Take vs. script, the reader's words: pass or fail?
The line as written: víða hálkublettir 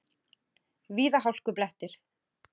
pass